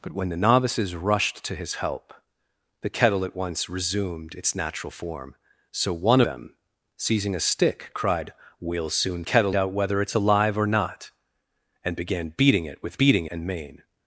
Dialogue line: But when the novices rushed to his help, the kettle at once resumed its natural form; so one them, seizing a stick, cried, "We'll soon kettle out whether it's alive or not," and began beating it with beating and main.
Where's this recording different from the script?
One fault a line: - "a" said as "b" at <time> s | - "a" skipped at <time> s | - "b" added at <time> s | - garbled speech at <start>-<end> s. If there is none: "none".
none